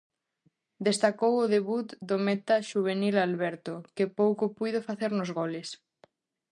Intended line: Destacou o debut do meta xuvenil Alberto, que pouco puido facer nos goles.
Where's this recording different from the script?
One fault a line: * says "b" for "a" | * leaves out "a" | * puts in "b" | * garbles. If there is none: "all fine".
all fine